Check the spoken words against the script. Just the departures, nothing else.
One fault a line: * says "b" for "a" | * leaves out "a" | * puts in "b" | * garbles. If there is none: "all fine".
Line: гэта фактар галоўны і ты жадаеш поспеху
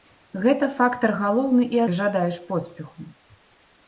all fine